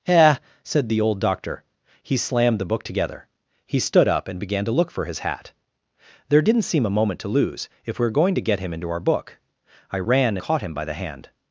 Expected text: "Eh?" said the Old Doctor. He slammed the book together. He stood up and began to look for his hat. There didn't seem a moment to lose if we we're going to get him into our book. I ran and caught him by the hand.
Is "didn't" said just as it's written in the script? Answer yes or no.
yes